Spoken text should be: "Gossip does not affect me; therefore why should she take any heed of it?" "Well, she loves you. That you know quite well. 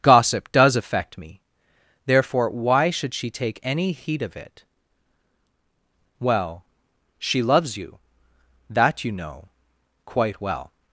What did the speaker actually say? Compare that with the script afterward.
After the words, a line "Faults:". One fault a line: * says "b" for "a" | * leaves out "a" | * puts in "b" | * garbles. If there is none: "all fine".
"Gossip does affect me; therefore why should she take any heed of it?" "Well, she loves you. That you know quite well.
Faults:
* leaves out "not"